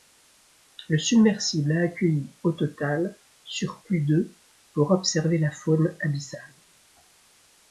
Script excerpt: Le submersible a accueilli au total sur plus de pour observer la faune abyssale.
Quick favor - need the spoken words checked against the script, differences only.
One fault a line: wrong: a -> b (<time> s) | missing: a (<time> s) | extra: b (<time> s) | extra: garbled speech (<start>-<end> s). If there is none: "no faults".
no faults